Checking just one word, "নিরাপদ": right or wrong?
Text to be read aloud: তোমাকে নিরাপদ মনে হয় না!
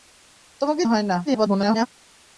wrong